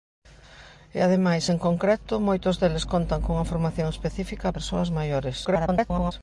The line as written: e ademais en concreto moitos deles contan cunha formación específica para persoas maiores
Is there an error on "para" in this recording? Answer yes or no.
yes